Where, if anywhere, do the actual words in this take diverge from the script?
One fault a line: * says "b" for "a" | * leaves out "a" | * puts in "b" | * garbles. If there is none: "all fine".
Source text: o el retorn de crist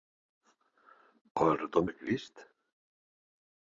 all fine